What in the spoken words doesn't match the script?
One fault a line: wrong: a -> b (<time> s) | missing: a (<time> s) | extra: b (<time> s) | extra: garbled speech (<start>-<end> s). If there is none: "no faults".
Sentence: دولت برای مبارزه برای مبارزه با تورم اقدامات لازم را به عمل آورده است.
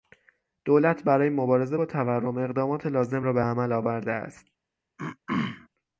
missing: برای مبارزه (1.8 s)